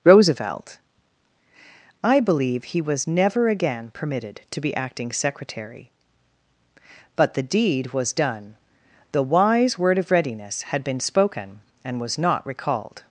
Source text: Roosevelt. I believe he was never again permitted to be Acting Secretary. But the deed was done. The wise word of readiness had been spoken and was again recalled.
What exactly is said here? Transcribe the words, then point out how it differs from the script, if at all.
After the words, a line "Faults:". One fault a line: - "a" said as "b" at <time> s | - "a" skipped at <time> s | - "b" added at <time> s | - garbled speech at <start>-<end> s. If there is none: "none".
Roosevelt. I believe he was never again permitted to be Acting Secretary. But the deed was done. The wise word of readiness had been spoken and was not recalled.
Faults:
- "again" said as "not" at 12.2 s